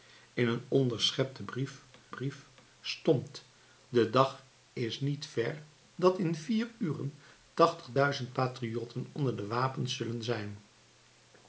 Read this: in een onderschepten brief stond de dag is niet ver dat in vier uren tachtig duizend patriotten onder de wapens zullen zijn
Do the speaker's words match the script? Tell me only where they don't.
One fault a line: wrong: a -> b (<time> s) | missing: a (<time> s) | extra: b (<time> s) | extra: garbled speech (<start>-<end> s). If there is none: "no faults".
extra: brief (2.1 s)